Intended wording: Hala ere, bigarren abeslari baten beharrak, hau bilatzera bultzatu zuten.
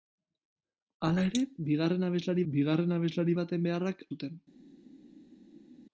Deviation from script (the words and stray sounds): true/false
true